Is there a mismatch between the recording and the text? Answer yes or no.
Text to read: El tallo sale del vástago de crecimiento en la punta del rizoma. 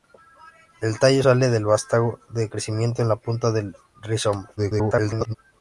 yes